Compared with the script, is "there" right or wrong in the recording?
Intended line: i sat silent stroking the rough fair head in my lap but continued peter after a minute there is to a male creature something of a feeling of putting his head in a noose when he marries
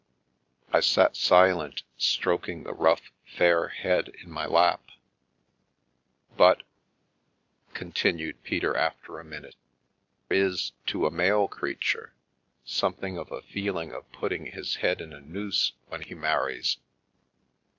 wrong